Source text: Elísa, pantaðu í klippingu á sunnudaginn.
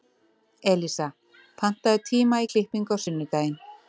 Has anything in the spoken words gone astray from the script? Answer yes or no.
yes